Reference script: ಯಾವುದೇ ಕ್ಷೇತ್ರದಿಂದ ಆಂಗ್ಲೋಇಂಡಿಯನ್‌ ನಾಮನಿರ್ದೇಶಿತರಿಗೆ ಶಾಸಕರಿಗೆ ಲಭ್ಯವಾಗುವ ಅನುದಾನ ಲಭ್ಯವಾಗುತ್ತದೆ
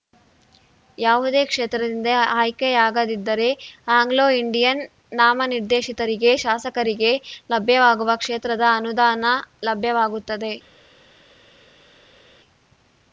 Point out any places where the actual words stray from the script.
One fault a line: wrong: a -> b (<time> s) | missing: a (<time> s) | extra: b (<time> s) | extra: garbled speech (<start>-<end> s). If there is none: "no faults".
extra: ಆಯ್ಕೆಯಾಗದಿದ್ದರೆ (2.4 s)
extra: ಕ್ಷೇತ್ರದ (8.2 s)